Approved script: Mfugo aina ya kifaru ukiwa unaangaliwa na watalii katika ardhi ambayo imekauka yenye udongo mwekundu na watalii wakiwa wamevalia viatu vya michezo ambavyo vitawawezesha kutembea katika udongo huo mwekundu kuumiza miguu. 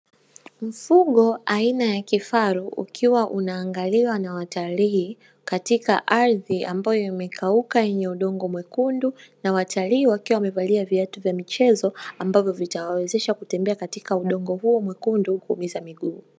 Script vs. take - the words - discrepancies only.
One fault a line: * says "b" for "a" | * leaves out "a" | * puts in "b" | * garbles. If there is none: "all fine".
all fine